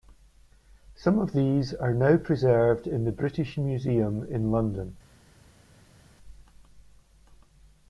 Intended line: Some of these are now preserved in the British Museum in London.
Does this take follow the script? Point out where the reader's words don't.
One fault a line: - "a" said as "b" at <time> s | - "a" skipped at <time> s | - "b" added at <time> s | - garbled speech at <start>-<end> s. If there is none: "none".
none